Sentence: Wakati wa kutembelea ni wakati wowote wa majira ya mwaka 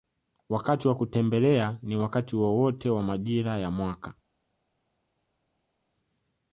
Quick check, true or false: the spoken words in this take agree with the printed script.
true